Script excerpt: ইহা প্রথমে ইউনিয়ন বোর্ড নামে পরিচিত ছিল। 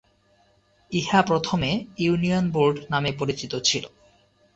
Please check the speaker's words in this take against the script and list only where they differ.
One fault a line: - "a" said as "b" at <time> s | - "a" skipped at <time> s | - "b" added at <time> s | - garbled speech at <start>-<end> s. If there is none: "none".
none